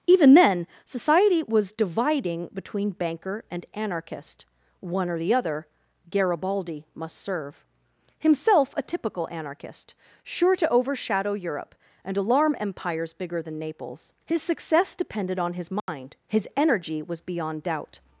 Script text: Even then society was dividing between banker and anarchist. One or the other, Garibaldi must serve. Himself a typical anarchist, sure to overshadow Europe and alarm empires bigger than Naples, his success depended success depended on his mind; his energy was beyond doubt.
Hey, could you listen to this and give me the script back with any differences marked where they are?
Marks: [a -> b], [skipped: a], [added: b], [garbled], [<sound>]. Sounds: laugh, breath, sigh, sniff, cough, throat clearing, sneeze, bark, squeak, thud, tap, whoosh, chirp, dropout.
Even then society was dividing between banker and anarchist. One or the other, Garibaldi must serve. Himself a typical anarchist, sure to overshadow Europe and alarm empires bigger than Naples, his success depended [skipped: success depended] on his mind; [dropout] his energy was beyond doubt.